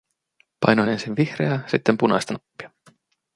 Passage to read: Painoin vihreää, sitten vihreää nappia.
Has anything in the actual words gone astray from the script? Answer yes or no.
yes